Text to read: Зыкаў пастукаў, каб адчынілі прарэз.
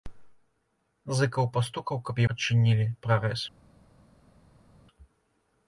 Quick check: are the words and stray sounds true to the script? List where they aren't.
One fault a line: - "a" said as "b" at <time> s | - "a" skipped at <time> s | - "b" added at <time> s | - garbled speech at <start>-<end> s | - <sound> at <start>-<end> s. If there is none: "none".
none